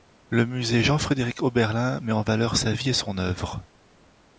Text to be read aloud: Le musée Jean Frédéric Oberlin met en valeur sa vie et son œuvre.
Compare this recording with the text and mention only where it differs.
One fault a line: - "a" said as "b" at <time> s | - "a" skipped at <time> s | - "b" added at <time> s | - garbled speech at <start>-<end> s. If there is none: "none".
none